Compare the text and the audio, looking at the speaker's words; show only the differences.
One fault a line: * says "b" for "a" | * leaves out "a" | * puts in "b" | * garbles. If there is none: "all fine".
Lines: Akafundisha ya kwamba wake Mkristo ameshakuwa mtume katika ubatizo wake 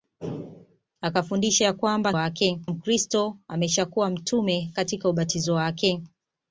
all fine